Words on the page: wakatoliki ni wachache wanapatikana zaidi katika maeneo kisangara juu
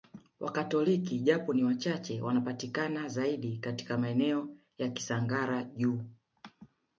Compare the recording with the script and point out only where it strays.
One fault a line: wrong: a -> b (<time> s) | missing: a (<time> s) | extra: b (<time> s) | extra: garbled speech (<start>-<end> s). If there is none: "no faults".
extra: japo (1.2 s)
extra: ya (4.8 s)